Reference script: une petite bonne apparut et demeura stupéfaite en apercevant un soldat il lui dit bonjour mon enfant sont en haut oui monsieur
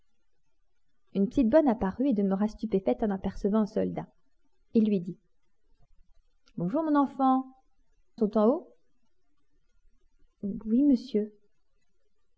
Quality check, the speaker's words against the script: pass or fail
pass